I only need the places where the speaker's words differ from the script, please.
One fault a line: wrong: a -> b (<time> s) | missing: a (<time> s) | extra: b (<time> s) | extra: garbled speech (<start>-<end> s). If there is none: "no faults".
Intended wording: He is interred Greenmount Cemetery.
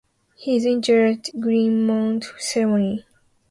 no faults